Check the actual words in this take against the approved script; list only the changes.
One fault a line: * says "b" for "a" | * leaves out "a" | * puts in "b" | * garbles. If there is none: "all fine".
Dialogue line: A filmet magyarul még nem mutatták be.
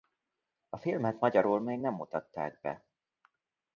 all fine